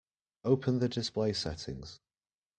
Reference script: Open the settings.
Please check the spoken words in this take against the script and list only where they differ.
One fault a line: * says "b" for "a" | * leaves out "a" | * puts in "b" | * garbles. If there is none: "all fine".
* puts in "display"